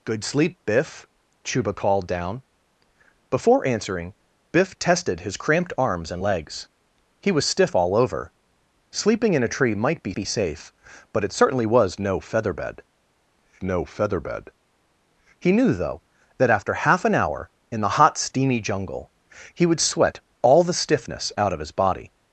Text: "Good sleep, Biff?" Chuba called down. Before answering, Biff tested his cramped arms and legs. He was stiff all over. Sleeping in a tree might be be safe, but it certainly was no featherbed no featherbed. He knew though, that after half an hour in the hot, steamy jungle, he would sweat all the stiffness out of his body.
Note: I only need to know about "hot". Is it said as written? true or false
true